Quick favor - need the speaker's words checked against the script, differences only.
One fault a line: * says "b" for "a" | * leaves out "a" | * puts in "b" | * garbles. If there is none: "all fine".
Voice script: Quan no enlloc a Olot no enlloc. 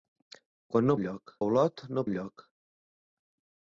all fine